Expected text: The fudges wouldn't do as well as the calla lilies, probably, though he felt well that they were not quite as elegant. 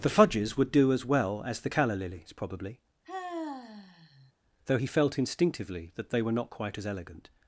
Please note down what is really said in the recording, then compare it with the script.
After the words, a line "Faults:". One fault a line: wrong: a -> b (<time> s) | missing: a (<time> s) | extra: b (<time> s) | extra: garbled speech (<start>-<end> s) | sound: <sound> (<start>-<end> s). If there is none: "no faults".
The fudges would do as well as the calla lilies, probably, though he felt instinctively that they were not quite as elegant.
Faults:
wrong: wouldn't -> would (0.6 s)
sound: sigh (3.0-4.3 s)
wrong: well -> instinctively (5.2 s)